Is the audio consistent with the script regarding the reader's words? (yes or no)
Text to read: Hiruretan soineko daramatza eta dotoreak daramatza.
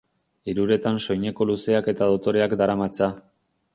no